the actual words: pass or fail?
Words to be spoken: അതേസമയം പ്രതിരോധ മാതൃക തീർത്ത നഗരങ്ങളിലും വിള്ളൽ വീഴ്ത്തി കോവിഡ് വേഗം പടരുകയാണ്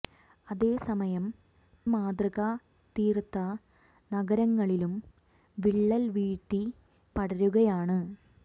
fail